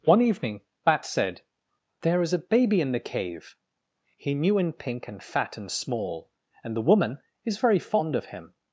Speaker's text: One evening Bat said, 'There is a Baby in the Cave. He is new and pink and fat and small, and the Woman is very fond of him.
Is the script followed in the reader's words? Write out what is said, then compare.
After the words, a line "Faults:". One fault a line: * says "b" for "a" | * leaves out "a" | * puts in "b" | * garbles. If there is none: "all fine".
One evening Bat said, 'There is a Baby in the Cave. He new and pink and fat and small, and the Woman is very fond of him.
Faults:
* leaves out "is"